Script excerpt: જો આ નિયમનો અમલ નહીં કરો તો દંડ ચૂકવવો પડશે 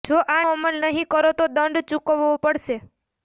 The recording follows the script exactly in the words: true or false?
false